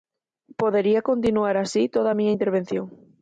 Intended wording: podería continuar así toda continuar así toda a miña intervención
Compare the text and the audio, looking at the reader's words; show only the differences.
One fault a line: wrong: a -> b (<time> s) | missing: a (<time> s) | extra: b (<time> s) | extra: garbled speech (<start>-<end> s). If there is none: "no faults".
missing: continuar así toda (2.1 s)